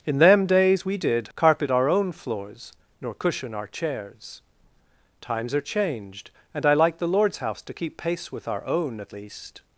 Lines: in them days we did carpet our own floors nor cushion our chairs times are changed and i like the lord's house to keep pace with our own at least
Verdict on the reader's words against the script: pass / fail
pass